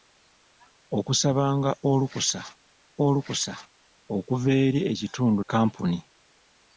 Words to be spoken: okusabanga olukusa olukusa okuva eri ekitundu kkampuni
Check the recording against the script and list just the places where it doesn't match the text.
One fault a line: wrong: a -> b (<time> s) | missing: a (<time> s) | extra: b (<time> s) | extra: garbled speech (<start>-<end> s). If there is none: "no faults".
no faults